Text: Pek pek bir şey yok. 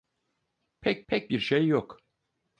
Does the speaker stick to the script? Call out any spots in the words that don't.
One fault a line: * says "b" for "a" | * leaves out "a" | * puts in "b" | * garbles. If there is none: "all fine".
all fine